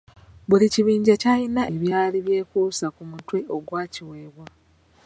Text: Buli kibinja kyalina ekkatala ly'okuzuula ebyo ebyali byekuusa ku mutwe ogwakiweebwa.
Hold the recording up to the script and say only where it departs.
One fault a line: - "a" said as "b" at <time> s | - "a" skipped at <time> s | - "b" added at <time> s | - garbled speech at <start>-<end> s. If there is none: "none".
- "ekkatala ly'okuzuula ebyo" skipped at 1.6 s